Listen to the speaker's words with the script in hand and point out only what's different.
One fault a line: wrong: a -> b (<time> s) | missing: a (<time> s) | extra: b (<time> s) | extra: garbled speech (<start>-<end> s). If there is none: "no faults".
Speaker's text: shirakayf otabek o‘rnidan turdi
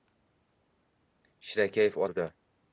missing: otabek o‘rnidan (2.0 s)